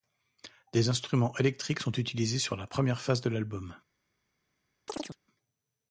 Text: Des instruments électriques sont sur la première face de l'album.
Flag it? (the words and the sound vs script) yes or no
yes